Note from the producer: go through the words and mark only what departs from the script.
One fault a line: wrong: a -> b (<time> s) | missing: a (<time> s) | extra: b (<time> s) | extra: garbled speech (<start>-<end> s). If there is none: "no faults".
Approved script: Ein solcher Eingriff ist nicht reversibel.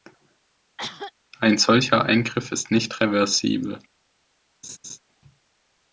no faults